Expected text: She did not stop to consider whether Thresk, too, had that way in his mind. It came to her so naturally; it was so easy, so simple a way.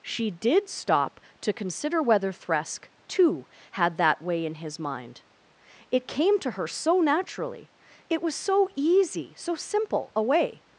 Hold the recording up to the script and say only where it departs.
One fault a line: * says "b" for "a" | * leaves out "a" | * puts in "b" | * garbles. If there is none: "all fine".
* leaves out "not"